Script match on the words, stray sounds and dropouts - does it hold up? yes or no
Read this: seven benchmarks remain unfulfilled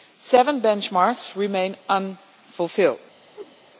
no